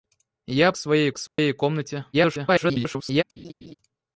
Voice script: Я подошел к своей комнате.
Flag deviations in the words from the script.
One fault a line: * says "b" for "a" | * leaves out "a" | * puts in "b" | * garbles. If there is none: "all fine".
* says "своей" for "подошел"
* garbles